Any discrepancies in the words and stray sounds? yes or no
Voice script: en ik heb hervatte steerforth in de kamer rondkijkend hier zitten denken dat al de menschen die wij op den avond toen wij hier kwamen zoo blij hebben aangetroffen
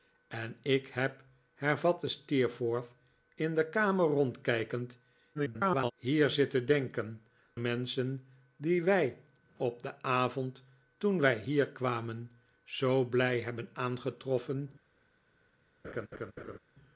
yes